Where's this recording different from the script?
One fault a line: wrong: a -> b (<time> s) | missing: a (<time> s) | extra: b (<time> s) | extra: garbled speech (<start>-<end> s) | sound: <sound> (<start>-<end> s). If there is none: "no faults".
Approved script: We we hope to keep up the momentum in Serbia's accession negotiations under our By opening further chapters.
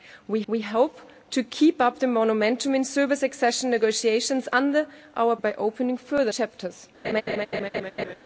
sound: laugh (7.0-8.2 s)